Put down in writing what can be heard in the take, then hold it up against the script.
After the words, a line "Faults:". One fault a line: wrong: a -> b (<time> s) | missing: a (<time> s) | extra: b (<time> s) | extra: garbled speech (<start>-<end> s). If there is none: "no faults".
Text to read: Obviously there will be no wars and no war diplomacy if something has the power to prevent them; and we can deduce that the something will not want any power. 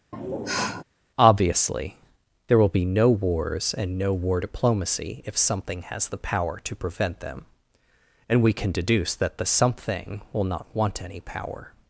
Obviously there will be no wars and no war diplomacy if something has the power to prevent them; and we can deduce that the something will not want any power.
Faults:
no faults